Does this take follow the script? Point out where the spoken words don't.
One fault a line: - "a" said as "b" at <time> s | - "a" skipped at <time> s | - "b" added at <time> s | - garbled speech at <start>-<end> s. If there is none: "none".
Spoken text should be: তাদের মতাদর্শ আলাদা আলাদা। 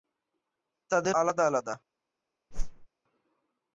- "মতাদর্শ" skipped at 1.1 s